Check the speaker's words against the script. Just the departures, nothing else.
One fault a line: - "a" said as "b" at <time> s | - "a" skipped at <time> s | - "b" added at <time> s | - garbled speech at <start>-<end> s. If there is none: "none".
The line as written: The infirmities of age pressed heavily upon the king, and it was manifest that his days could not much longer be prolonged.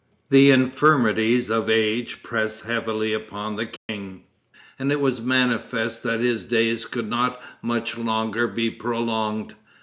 none